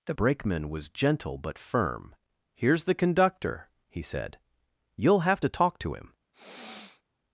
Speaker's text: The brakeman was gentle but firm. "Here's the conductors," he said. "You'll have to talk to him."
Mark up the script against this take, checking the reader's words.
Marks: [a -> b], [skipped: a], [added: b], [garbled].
The brakeman was gentle but firm. "Here's the [conductors," -> conductor] he said. "You'll have to talk to him."